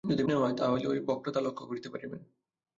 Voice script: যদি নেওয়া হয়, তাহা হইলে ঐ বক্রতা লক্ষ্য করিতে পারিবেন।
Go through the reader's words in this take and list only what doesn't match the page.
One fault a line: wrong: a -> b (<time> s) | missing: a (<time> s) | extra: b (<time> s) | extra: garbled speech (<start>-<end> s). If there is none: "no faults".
no faults